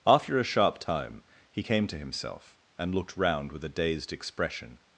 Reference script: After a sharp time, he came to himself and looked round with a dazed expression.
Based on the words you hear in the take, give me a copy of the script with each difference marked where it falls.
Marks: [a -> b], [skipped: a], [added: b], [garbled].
After a sharp time, he came to himself and looked round with a dazed expression.